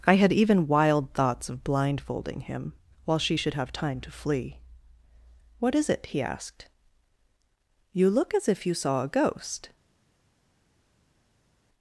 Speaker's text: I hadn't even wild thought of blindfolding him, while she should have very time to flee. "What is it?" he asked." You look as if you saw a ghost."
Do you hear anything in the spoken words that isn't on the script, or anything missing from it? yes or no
yes